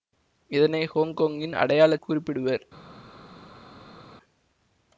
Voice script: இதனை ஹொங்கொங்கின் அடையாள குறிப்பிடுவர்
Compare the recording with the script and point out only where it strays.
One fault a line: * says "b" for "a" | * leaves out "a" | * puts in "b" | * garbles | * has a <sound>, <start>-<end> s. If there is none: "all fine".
all fine